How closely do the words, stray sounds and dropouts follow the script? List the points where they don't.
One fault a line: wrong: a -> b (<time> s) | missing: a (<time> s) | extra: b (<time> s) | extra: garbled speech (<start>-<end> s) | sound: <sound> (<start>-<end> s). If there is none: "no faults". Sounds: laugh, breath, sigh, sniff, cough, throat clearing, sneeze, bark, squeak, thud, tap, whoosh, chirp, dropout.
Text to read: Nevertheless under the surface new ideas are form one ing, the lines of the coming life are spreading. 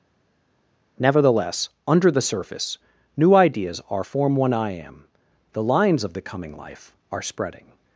wrong: ing -> I am (4.5 s)